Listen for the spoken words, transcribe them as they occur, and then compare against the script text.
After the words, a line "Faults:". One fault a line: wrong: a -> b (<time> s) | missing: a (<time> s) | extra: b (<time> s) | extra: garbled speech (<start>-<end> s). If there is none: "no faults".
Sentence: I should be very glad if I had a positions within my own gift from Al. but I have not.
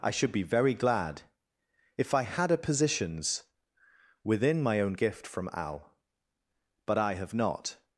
I should be very glad if I had a positions within my own gift from Al. but I have not.
Faults:
no faults